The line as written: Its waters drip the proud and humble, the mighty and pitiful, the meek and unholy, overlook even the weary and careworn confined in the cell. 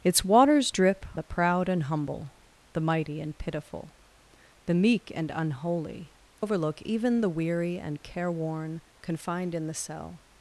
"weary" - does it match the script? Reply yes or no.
yes